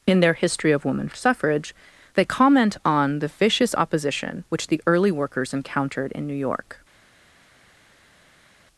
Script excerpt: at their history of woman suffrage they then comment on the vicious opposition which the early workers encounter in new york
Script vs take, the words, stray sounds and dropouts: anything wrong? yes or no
yes